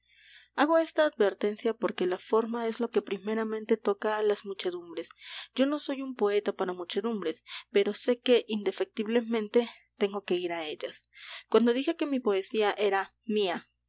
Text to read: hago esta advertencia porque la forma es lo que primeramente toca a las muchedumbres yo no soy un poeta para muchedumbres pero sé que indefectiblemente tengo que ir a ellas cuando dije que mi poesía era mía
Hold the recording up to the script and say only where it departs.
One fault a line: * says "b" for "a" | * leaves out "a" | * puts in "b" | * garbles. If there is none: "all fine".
all fine